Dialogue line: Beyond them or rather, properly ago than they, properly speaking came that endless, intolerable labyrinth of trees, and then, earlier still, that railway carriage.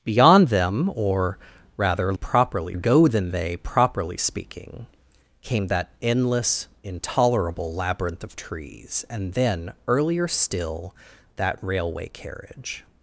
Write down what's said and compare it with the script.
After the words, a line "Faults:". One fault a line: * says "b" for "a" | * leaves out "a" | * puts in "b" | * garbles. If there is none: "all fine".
Beyond them or rather, properly ago than they, properly speaking came that endless, intolerable labyrinth of trees, and then, earlier still, that railway carriage.
Faults:
all fine